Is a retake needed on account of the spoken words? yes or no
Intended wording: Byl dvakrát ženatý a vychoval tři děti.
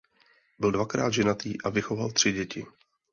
no